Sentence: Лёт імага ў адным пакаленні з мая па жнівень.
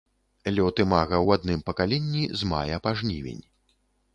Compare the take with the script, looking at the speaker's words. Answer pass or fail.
pass